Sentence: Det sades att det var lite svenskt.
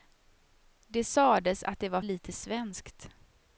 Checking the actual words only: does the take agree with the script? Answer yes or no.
yes